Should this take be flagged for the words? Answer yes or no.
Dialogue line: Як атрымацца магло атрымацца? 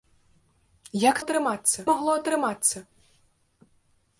no